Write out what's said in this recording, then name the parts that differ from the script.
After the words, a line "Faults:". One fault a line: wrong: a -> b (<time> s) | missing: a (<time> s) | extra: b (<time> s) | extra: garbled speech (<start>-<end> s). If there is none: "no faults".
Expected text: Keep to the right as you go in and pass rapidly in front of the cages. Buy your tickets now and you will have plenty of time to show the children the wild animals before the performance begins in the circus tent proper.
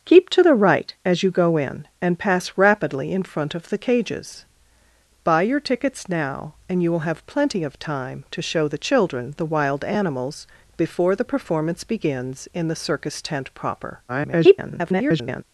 Keep to the right as you go in and pass rapidly in front of the cages. Buy your tickets now and you will have plenty of time to show the children the wild animals before the performance begins in the circus tent proper. [garbled]
Faults:
extra: garbled speech (14.1-15.4 s)